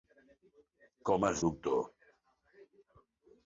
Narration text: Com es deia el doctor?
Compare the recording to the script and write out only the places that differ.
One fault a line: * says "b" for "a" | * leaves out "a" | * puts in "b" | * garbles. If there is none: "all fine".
* leaves out "deia el"